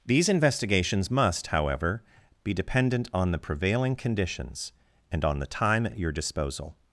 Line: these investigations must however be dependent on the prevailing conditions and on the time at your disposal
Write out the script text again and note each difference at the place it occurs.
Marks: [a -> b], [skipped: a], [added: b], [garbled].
these investigations must however be dependent on the prevailing conditions and on the time at [added: at] your disposal